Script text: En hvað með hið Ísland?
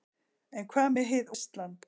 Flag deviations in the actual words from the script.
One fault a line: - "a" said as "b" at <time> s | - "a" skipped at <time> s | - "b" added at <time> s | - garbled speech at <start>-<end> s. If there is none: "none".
none